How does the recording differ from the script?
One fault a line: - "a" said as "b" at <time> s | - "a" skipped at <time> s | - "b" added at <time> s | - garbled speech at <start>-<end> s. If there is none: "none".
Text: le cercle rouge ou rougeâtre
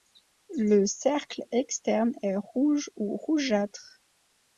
- "externe est" added at 1.5 s